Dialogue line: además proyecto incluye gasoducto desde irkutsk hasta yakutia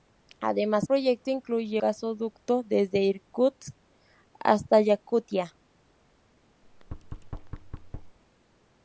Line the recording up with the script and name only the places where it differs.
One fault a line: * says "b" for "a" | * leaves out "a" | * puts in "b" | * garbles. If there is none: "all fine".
all fine